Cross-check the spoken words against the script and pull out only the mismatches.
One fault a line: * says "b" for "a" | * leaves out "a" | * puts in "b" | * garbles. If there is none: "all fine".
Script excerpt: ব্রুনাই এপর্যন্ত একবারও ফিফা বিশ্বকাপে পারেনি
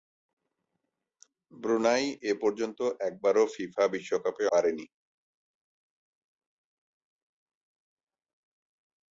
all fine